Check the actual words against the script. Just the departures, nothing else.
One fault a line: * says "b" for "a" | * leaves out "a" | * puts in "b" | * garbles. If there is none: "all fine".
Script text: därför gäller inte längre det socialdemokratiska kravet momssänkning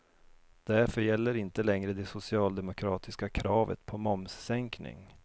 * puts in "på"